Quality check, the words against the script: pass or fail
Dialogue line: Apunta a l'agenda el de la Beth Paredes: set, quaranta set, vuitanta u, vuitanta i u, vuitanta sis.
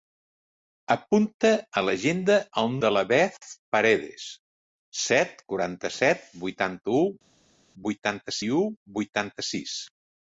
pass